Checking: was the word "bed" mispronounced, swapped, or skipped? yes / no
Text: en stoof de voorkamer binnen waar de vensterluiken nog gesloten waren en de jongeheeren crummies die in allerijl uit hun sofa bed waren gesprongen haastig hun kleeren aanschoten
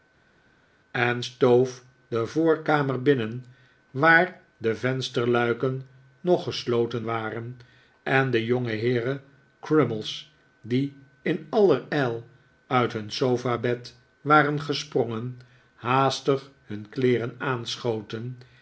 no